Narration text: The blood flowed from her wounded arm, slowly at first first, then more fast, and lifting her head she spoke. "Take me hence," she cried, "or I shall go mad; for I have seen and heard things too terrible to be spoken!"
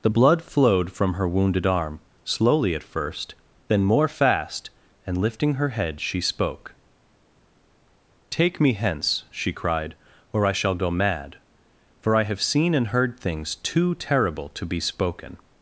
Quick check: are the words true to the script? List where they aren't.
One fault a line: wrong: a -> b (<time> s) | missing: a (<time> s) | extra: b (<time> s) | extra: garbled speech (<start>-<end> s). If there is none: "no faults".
missing: first (3.3 s)